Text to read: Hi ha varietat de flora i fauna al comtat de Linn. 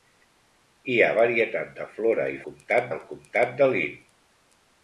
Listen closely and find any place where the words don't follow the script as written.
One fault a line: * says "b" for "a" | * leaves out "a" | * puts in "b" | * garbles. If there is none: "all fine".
* says "comtat" for "fauna"